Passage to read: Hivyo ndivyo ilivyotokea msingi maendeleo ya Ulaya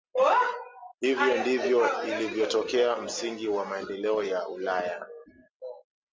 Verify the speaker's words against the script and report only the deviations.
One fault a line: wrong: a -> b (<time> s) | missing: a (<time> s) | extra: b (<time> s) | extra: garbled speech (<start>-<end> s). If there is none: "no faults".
extra: wa (3.5 s)